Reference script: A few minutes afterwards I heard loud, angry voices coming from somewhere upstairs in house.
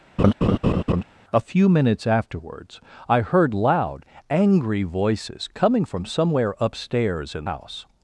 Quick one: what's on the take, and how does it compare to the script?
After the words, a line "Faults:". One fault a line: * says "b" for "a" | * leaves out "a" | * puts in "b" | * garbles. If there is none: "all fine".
A few minutes afterwards I heard loud, angry voices coming from somewhere upstairs in house.
Faults:
all fine